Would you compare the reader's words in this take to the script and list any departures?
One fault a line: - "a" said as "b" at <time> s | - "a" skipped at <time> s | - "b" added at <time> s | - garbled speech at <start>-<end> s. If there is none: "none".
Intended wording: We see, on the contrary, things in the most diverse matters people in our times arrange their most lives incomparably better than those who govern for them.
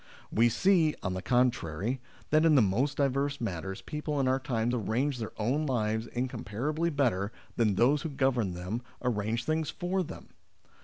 - "things" said as "that" at 2.3 s
- "most" said as "own" at 5.4 s
- "them arrange things" added at 8.5 s